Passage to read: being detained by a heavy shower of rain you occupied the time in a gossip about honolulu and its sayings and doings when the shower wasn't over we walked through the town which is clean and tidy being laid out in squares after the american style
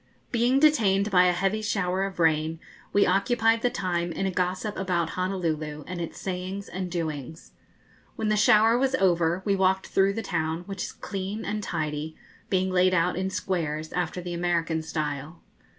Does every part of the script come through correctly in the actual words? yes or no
no